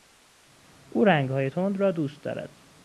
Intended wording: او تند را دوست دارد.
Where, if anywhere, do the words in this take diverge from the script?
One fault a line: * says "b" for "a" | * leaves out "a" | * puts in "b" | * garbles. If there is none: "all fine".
* puts in "رنگهای"